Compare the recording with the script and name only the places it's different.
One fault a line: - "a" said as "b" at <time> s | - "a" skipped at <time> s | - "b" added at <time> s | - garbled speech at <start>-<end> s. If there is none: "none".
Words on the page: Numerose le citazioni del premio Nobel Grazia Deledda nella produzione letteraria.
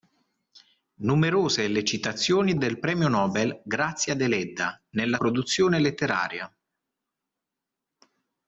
none